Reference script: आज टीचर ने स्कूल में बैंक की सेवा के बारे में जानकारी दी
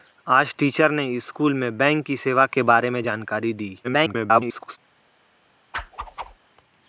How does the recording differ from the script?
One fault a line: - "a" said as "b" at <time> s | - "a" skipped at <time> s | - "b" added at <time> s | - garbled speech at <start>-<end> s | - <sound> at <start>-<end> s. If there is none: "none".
- garbled speech at 3.8-4.8 s
- whoosh at 5.7-6.4 s